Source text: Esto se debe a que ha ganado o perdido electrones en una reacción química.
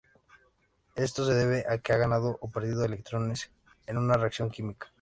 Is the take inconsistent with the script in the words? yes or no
no